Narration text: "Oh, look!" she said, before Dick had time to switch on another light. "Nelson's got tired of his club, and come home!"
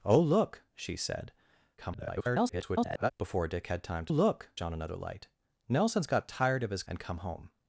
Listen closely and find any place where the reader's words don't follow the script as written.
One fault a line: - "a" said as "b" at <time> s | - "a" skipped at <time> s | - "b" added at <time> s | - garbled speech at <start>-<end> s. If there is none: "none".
- garbled speech at 1.8-3.1 s
- "switch" said as "look" at 4.1 s
- "club" skipped at 6.8 s